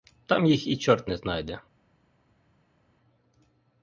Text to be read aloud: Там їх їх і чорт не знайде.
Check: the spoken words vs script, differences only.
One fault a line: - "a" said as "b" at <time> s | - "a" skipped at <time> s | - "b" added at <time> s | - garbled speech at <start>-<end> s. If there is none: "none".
- "їх" skipped at 0.7 s